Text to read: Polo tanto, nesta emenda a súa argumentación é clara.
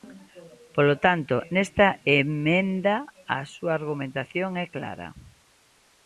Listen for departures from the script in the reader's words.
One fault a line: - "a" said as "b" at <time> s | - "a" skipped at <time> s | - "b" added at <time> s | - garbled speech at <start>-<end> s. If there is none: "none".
none